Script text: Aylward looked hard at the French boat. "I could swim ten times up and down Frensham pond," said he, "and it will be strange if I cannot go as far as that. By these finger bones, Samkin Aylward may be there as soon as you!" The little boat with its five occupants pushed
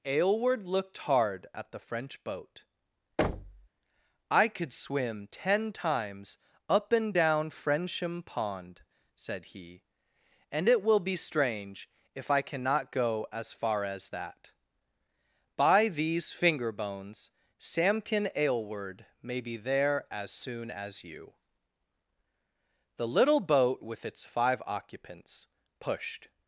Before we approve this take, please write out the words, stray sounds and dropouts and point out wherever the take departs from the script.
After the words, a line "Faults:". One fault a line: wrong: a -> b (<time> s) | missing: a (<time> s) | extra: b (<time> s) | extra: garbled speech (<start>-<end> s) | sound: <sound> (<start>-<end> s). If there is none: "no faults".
Aylward looked hard at the French boat. "I could swim ten times up and down Frensham pond," said he, "and it will be strange if I cannot go as far as that. By these finger bones, Samkin Aylward may be there as soon as you!" The little boat with its five occupants pushed
Faults:
sound: thud (3.2-3.7 s)